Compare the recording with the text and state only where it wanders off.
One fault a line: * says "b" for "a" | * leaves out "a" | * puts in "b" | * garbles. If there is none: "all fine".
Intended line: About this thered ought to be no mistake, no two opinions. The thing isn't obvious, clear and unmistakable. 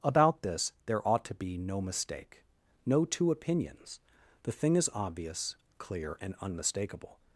* says "there" for "thered"
* says "is" for "isn't"